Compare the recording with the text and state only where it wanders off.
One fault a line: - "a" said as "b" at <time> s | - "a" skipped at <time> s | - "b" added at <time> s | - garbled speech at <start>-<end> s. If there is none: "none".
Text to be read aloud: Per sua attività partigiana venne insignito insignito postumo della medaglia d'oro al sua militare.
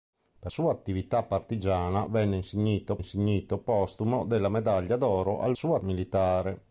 none